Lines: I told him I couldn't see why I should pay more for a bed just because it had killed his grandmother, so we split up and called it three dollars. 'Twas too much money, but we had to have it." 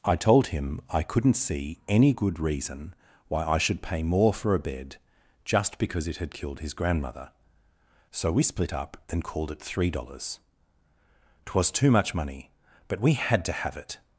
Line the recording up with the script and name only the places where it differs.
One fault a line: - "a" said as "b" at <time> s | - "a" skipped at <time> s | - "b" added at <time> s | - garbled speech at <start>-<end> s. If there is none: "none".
- "any good reason" added at 1.9 s